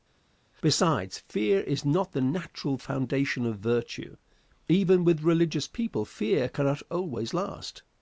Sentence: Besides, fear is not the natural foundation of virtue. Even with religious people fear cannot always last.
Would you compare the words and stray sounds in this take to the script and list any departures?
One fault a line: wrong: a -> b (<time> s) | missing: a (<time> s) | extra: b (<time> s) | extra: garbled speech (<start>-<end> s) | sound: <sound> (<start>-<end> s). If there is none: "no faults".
no faults